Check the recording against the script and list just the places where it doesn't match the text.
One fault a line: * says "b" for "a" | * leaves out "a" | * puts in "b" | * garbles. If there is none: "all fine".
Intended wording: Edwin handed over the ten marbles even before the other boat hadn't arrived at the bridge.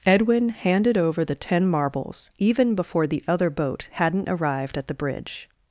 all fine